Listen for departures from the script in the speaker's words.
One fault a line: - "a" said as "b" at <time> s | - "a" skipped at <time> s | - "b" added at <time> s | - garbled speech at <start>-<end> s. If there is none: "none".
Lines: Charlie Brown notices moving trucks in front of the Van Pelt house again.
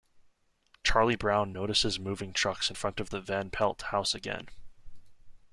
none